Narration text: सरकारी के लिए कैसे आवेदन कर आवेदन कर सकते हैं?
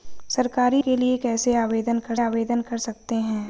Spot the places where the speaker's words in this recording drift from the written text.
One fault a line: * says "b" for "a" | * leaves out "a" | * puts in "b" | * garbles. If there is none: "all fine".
all fine